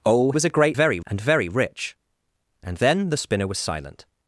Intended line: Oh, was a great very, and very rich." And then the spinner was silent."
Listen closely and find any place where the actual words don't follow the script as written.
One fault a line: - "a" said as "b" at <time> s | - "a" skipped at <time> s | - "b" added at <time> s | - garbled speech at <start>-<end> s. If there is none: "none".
none